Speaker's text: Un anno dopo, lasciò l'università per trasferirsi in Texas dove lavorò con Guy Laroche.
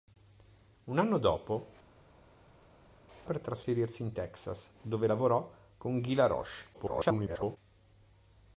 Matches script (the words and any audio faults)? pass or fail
fail